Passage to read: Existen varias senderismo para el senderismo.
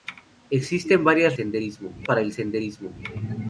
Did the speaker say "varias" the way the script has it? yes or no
yes